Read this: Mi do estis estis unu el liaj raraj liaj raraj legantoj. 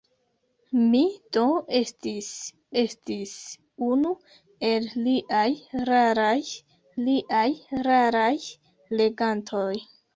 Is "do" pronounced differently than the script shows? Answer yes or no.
no